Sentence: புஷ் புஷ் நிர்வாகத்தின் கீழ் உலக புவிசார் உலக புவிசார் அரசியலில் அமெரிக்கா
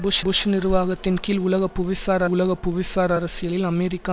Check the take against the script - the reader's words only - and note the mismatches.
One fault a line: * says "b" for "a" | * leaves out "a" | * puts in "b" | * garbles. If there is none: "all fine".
all fine